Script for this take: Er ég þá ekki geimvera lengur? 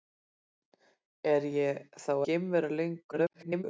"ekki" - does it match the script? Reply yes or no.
no